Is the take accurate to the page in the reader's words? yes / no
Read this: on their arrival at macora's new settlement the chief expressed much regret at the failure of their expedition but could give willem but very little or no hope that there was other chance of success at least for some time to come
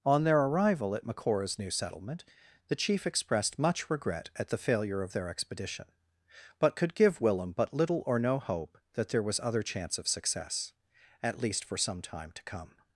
no